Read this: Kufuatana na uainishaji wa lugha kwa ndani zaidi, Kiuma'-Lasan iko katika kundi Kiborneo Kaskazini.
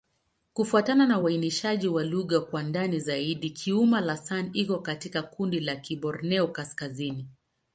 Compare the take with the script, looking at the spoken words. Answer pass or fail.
fail